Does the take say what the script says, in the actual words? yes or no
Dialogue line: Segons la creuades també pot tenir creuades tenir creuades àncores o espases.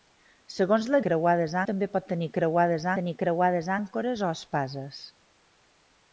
yes